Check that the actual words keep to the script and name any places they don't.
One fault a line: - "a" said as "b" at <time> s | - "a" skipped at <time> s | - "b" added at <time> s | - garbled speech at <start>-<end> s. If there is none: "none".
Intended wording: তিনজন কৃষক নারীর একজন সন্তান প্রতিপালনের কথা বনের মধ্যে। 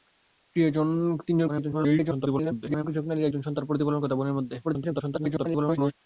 - garbled speech at 1.5-2.8 s
- garbled speech at 4.6-5.9 s